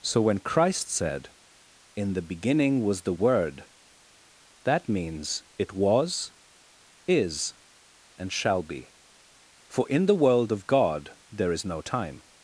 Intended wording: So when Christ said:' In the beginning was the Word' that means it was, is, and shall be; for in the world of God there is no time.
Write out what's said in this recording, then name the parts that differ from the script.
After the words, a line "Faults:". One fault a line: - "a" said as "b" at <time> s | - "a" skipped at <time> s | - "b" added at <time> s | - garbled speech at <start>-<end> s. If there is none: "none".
So when Christ said:' In the beginning was the Word' that means it was, is, and shall be; for in the world of God there is no time.
Faults:
none